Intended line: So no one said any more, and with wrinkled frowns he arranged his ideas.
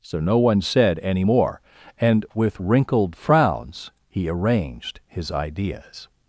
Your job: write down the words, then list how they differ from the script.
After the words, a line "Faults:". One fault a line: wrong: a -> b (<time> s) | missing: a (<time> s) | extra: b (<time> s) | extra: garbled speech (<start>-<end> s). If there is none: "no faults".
So no one said any more, and with wrinkled frowns he arranged his ideas.
Faults:
no faults